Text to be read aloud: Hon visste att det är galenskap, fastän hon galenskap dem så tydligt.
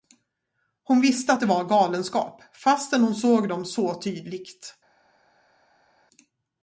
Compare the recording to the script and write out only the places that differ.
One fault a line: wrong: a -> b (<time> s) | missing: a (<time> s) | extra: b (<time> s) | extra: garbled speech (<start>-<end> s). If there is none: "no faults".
wrong: är -> var (1.4 s)
wrong: galenskap -> såg (3.1 s)